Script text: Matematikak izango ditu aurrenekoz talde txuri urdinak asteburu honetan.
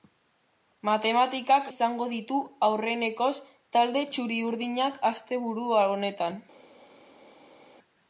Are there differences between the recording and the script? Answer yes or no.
no